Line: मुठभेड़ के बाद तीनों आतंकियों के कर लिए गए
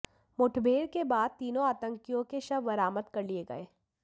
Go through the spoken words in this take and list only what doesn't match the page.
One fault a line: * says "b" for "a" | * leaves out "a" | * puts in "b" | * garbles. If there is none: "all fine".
* puts in "शव बरामद"